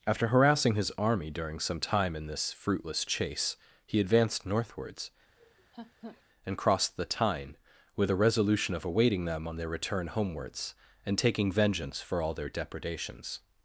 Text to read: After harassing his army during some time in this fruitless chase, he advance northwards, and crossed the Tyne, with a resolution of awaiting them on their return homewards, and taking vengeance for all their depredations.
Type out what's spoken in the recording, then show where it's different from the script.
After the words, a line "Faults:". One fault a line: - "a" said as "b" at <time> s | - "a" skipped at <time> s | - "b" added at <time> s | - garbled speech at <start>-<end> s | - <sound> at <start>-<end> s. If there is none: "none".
After harassing his army during some time in this fruitless chase, he advanced northwards, and crossed the Tyne, with a resolution of awaiting them on their return homewards, and taking vengeance for all their depredations.
Faults:
- "advance" said as "advanced" at 4.0 s
- laugh at 5.4-6.2 s